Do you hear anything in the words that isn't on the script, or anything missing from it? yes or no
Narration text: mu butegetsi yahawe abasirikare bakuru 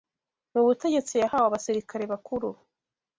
no